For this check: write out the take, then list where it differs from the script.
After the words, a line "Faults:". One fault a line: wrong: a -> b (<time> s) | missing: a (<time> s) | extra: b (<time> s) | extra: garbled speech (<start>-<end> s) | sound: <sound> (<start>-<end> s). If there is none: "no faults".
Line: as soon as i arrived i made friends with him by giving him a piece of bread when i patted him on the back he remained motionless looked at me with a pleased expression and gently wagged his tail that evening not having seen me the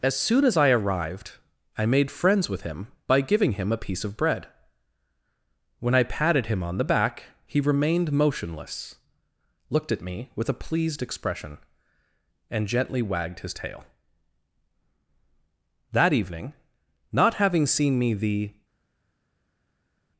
as soon as i arrived i made friends with him by giving him a piece of bread when i patted him on the back he remained motionless looked at me with a pleased expression and gently wagged his tail that evening not having seen me the
Faults:
no faults